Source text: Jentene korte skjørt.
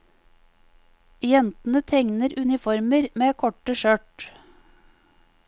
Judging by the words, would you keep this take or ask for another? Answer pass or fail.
fail